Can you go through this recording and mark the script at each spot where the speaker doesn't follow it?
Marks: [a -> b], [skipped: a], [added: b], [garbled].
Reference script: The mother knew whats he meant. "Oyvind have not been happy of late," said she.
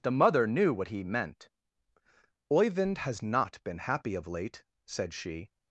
The mother knew [whats -> what] he meant. "Oyvind [have -> has] not been happy of late," said she.